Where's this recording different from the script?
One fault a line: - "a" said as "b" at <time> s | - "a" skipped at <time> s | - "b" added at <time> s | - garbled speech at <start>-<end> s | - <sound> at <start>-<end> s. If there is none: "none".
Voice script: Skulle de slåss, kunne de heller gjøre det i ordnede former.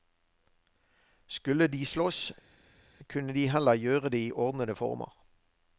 none